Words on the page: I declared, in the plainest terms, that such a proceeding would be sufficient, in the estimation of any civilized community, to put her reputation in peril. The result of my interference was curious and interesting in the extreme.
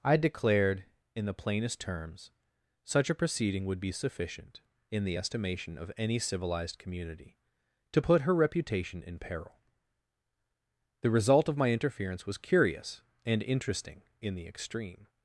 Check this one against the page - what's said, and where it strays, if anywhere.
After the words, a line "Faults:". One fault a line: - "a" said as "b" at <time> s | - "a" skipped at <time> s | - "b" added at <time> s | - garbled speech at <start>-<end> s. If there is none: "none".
I declared, in the plainest terms, such a proceeding would be sufficient, in the estimation of any civilized community, to put her reputation in peril. The result of my interference was curious and interesting in the extreme.
Faults:
- "that" skipped at 2.3 s